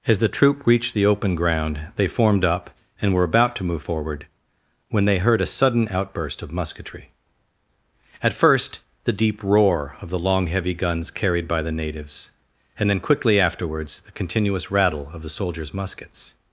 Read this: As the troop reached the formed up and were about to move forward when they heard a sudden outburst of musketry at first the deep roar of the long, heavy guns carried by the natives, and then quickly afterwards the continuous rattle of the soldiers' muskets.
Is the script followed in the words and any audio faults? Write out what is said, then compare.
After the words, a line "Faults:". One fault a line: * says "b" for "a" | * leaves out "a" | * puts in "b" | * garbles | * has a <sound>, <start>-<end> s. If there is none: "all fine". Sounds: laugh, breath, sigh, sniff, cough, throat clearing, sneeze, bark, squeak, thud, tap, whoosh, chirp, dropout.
As the troop reached the open ground they formed up and were about to move forward when they heard a sudden outburst of musketry at first the deep roar of the long, heavy guns carried by the natives, and then quickly afterwards the continuous rattle of the soldiers' muskets.
Faults:
* puts in "open ground they"